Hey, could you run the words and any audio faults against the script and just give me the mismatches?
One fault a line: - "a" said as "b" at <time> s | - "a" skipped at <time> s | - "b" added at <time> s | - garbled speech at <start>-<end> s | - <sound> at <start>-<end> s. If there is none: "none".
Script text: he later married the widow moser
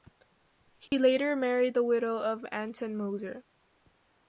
- dropout at 0.9-0.9 s
- "of anton" added at 2.2 s